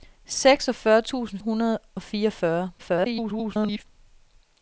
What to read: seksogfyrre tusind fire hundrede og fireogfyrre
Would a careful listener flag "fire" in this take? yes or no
yes